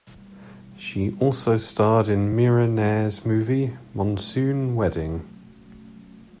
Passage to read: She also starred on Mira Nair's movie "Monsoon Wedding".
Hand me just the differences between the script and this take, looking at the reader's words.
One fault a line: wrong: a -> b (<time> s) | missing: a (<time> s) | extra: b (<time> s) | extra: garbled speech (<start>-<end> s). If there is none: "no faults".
wrong: on -> in (2.1 s)